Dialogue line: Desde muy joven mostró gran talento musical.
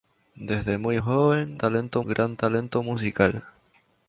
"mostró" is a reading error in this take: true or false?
true